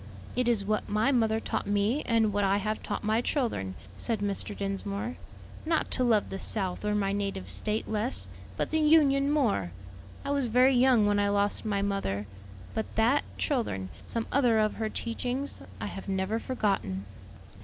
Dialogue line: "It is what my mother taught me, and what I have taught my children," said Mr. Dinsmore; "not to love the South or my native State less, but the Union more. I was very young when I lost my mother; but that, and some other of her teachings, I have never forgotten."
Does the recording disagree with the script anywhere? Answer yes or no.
yes